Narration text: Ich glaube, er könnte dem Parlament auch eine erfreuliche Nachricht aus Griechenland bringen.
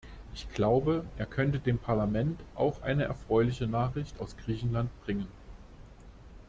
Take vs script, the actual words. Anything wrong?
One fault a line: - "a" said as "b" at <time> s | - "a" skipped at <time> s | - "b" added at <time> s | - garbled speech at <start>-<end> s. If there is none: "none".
none